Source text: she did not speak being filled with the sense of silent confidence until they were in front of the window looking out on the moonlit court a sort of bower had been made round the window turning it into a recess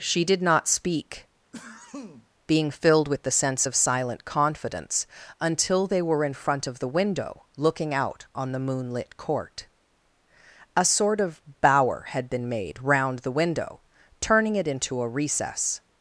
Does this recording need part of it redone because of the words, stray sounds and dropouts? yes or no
yes